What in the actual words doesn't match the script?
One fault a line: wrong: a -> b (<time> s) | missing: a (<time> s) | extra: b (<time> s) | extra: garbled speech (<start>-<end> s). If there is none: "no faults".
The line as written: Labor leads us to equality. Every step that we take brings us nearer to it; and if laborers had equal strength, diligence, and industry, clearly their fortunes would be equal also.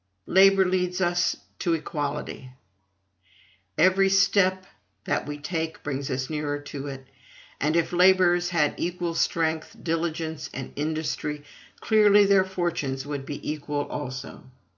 no faults